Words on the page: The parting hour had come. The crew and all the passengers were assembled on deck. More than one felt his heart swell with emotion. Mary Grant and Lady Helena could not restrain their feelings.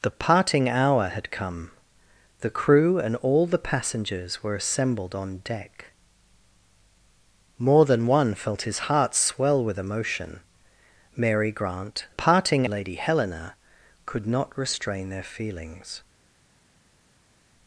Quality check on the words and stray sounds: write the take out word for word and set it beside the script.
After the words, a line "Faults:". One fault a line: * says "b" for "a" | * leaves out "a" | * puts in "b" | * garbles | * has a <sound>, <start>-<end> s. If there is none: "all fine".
The parting hour had come. The crew and all the passengers were assembled on deck. More than one felt his heart swell with emotion. Mary Grant parting Lady Helena could not restrain their feelings.
Faults:
* says "parting" for "and"